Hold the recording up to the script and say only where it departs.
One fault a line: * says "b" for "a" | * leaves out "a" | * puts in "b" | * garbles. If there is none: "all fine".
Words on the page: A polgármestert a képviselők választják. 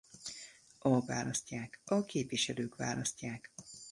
* says "választják" for "polgármestert"